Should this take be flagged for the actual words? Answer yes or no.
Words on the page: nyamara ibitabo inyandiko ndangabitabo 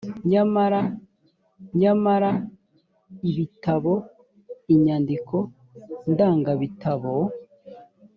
yes